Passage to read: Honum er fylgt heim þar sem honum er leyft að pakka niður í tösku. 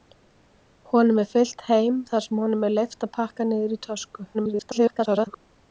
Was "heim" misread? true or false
false